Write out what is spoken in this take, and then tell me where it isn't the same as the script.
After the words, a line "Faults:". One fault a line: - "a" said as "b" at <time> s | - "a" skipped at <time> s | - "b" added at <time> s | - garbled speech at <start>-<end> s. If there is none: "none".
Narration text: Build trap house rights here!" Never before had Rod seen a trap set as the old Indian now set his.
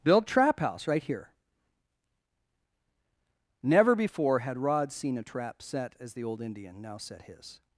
Build trap house right here!" Never before had Rod seen a trap set as the old Indian now set his.
Faults:
- "rights" said as "right" at 0.9 s